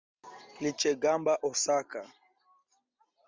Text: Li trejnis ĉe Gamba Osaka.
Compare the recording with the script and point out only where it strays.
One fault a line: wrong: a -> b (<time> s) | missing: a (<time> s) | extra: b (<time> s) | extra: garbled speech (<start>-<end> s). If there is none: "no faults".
missing: trejnis (0.7 s)